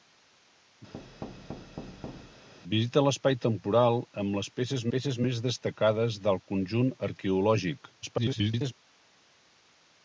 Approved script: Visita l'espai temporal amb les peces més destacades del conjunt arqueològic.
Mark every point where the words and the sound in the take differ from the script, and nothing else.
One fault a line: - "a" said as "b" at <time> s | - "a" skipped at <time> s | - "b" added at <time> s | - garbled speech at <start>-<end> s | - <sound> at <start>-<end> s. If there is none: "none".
- thud at 0.9-2.5 s
- "peces" added at 5.0 s
- garbled speech at 8.0-8.7 s